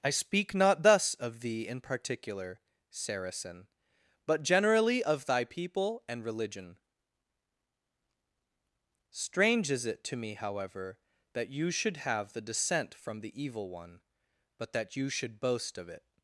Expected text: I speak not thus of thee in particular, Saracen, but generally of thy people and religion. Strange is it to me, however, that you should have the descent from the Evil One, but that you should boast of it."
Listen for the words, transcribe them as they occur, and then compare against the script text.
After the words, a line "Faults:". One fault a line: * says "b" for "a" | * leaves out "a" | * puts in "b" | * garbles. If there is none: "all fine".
I speak not thus of thee in particular, Saracen, but generally of thy people and religion. Strange is it to me, however, that you should have the descent from the Evil One, but that you should boast of it."
Faults:
all fine